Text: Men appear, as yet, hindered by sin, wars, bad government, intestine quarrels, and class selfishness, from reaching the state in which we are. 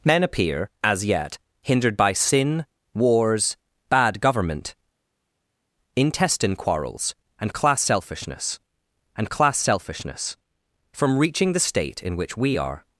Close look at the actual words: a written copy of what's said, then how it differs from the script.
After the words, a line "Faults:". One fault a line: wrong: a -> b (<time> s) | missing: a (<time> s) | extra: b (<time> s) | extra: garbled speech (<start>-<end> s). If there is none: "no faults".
Men appear, as yet, hindered by sin, wars, bad government, intestine quarrels, and class selfishness and class selfishness, from reaching the state in which we are.
Faults:
extra: and class selfishness (9.2 s)